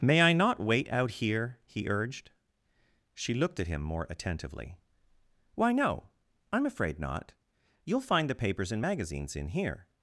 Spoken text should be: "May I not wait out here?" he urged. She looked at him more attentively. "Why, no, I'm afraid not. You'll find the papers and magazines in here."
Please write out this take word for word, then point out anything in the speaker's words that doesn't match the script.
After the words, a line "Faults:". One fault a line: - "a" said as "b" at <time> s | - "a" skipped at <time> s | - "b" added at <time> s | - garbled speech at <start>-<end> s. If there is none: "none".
"May I not wait out here?" he urged. She looked at him more attentively. "Why, no, I'm afraid not. You'll find the papers and magazines in here."
Faults:
none